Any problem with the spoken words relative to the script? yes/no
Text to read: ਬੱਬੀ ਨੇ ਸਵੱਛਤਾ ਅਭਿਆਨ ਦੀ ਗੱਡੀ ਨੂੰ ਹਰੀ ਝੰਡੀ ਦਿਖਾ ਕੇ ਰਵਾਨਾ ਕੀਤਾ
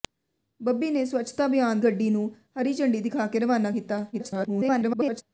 yes